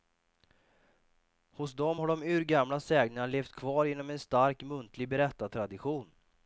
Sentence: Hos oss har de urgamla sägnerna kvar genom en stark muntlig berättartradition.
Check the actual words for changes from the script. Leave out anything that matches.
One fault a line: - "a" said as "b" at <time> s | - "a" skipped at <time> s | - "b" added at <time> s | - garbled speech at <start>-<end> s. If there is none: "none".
- "oss" said as "dem" at 1.7 s
- "levt" added at 3.3 s